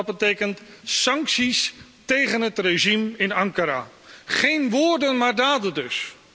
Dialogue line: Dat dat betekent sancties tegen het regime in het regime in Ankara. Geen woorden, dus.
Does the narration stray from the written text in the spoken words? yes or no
yes